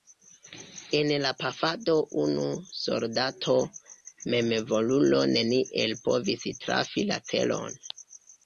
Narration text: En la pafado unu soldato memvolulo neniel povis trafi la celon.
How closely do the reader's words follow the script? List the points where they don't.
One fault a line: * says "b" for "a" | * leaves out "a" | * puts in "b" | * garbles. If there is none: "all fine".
all fine